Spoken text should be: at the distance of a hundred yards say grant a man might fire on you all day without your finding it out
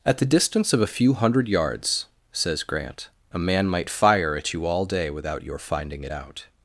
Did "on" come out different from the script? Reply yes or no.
yes